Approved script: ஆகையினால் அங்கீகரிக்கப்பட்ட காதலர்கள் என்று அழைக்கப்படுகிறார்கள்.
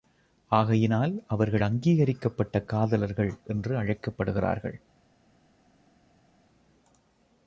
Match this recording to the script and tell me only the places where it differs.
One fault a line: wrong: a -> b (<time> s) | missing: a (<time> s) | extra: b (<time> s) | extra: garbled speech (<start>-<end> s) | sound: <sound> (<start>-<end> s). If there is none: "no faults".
extra: அவர்கள் (1.3 s)